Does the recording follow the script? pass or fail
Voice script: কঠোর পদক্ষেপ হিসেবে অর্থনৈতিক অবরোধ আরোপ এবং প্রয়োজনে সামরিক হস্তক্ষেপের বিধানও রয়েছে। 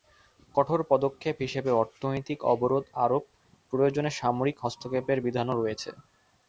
fail